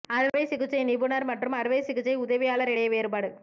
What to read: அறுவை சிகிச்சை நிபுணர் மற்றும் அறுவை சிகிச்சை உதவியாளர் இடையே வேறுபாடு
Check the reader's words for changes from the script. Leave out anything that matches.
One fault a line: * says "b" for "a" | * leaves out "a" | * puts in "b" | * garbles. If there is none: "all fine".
all fine